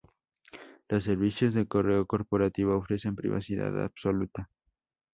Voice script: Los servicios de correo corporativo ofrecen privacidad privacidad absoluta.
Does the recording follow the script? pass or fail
fail